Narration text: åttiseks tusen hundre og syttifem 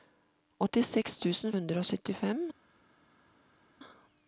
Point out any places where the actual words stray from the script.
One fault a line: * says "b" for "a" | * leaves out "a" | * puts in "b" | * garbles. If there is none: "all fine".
all fine